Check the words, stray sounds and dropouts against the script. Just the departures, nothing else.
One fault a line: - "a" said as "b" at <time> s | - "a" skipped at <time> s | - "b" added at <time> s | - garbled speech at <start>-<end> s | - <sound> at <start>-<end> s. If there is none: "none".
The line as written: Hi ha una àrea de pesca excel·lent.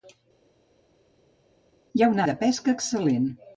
- "àrea" skipped at 2.2 s